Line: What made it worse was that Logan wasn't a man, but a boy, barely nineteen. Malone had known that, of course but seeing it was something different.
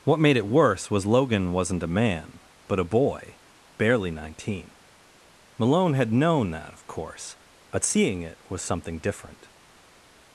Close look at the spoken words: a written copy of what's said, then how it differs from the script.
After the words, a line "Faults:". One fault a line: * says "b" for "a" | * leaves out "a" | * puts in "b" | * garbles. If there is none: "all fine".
What made it worse was Logan wasn't a man, but a boy, barely nineteen. Malone had known that, of course but seeing it was something different.
Faults:
* leaves out "that"